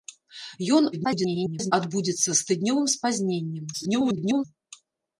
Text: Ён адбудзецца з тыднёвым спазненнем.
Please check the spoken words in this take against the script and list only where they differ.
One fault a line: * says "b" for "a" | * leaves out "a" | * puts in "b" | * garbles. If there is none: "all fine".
* garbles
* garbles